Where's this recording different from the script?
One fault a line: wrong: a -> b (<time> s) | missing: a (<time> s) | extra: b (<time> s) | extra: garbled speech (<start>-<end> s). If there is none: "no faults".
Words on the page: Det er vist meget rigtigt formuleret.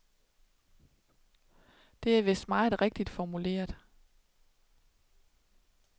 no faults